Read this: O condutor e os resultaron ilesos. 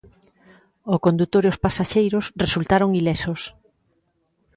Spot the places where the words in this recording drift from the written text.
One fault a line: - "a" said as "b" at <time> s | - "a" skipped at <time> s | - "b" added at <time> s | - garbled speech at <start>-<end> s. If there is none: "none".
- "pasaxeiros" added at 1.6 s